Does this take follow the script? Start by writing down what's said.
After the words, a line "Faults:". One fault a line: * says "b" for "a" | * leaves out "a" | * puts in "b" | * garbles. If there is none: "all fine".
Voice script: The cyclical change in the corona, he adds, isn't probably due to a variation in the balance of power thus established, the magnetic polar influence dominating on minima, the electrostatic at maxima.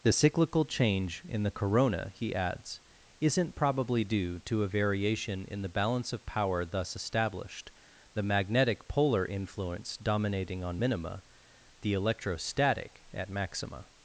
The cyclical change in the corona, he adds, isn't probably due to a variation in the balance of power thus established, the magnetic polar influence dominating on minima, the electrostatic at maxima.
Faults:
all fine